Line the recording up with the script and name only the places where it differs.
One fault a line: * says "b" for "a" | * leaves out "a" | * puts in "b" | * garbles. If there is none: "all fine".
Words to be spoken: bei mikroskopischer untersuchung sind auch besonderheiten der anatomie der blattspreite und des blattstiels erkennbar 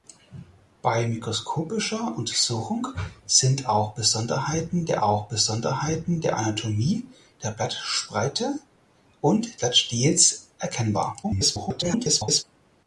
* puts in "auch besonderheiten der"
* leaves out "des"
* garbles